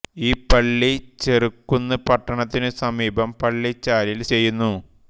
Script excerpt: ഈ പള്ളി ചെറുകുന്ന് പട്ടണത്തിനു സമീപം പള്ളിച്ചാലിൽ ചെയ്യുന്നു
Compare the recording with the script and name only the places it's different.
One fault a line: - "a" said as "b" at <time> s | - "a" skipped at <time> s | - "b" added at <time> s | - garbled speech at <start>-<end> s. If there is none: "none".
none